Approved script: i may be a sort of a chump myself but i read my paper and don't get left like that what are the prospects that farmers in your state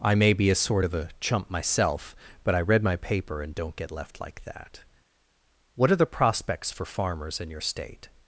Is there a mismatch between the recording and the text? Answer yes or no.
yes